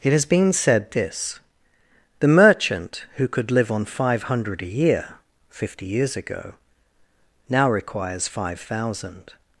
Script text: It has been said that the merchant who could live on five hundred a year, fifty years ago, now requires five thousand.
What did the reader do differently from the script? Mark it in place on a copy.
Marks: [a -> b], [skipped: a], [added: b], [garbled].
It has been said [that -> this] the merchant who could live on five hundred a year, fifty years ago, now requires five thousand.